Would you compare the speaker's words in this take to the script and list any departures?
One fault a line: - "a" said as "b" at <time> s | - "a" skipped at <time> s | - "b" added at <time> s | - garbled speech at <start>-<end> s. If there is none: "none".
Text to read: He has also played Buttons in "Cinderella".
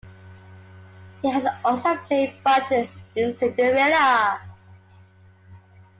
none